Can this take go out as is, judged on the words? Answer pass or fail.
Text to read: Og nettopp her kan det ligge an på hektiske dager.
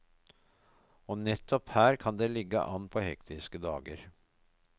pass